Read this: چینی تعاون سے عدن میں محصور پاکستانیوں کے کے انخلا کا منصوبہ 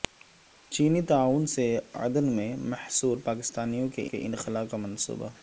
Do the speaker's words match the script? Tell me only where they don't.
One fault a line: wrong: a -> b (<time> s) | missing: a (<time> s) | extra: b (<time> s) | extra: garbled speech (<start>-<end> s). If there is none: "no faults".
no faults